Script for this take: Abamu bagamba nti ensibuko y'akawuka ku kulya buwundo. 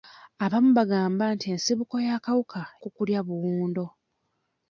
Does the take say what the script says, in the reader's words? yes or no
yes